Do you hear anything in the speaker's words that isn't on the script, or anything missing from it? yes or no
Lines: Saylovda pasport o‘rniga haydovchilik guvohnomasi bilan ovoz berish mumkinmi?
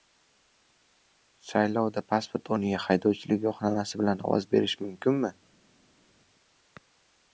no